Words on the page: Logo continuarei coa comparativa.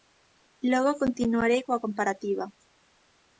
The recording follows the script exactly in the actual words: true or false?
true